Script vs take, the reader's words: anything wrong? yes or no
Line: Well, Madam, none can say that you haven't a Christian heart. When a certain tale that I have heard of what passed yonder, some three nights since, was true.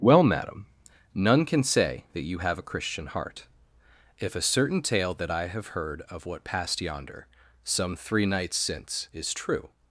yes